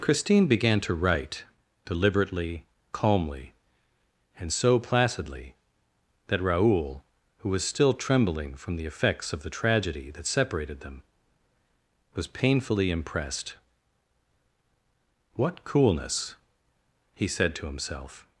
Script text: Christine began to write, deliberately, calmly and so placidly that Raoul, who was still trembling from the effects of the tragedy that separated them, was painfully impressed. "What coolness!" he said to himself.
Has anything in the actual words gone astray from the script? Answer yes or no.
no